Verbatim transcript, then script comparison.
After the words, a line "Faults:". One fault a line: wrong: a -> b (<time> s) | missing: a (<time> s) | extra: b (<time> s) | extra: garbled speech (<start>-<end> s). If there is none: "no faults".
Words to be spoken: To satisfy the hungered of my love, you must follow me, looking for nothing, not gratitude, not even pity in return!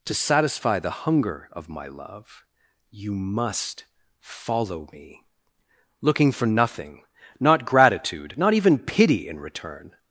To satisfy the hunger of my love, you must follow me, looking for nothing, not gratitude, not even pity in return!
Faults:
wrong: hungered -> hunger (0.9 s)